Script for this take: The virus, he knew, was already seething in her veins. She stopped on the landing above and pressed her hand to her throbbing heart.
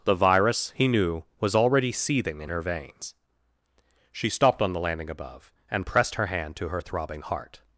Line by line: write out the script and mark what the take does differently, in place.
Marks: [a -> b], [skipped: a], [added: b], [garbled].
The virus, he knew, was already seething in her veins. She stopped on the landing above and pressed her hand to her throbbing heart.